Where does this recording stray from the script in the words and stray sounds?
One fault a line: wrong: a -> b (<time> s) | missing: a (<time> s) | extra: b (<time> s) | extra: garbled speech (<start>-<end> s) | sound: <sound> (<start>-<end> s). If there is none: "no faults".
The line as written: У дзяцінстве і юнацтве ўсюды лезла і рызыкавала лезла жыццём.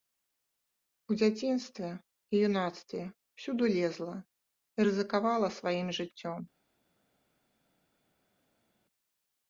wrong: лезла -> сваім (5.6 s)